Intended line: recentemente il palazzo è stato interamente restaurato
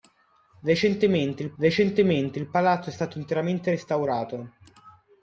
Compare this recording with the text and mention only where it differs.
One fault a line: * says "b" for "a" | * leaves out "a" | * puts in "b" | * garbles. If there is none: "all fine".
* puts in "recentemente il"